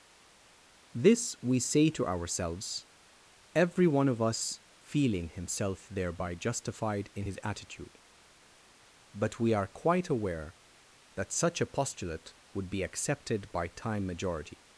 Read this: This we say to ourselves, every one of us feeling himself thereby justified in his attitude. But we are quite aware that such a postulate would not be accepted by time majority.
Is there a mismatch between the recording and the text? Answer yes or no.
yes